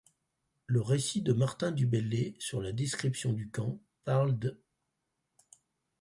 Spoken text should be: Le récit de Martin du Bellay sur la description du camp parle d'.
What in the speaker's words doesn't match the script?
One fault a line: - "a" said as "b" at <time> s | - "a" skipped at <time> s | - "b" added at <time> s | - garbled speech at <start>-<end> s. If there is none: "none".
none